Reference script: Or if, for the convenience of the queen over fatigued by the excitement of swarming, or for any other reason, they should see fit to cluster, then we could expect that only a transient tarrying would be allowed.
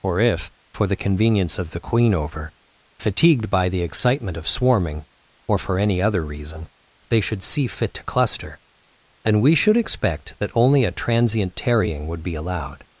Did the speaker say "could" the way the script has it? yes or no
no